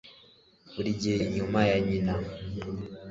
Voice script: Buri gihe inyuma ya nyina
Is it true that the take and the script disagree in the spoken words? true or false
false